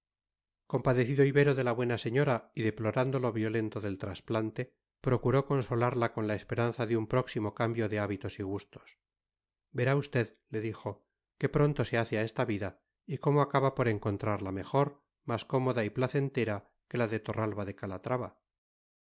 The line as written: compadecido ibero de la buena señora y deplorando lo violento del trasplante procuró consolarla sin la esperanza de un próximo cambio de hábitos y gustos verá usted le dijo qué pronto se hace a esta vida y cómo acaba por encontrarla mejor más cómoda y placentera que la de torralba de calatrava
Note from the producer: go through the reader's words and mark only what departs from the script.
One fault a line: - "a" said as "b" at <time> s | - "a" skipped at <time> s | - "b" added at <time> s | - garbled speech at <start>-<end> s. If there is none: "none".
- "sin" said as "con" at 6.1 s